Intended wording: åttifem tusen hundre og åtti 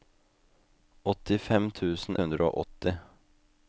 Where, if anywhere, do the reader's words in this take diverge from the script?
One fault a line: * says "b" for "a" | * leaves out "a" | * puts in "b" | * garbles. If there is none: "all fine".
all fine